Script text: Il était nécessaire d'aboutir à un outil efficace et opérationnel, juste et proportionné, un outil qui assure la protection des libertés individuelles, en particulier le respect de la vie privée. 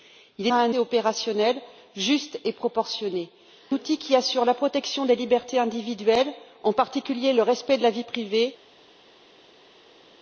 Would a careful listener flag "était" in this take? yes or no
yes